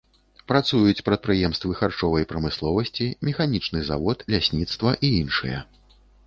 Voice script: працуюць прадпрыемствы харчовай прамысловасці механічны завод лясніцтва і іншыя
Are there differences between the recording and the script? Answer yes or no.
no